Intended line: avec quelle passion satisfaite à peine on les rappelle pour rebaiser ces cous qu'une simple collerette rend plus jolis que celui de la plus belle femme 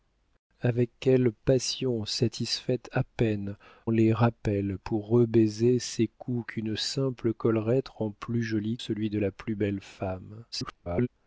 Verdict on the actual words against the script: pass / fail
fail